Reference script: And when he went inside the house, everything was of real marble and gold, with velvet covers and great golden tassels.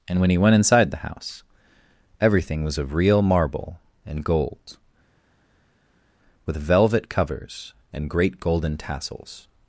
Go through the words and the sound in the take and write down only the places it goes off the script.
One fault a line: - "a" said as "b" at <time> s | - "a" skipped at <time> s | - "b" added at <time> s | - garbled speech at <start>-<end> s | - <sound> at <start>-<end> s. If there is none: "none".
none